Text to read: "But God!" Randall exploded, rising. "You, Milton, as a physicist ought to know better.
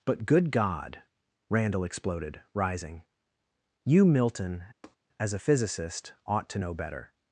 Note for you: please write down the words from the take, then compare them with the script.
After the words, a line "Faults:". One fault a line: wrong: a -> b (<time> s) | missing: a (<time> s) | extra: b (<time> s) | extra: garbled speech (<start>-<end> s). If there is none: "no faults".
"But good God!" Randall exploded, rising. "You, Milton, as a physicist ought to know better.
Faults:
extra: good (0.2 s)